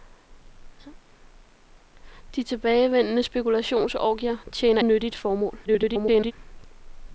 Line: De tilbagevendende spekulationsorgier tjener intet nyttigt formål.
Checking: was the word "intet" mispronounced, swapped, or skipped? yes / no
yes